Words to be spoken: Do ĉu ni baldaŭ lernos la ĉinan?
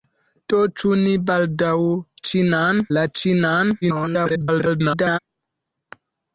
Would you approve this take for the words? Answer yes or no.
no